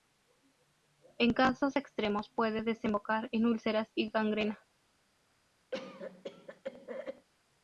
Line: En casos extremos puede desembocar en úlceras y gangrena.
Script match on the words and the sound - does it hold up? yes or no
no